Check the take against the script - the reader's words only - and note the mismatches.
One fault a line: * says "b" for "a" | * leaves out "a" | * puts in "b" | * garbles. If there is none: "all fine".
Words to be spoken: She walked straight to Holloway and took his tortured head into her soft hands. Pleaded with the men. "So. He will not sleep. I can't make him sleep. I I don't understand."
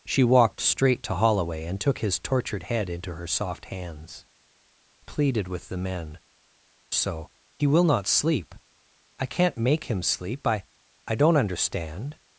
all fine